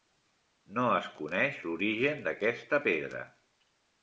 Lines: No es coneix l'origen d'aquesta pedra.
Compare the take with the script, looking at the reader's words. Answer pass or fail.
pass